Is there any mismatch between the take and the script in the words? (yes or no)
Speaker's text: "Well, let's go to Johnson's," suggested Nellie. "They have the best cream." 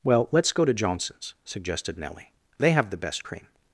no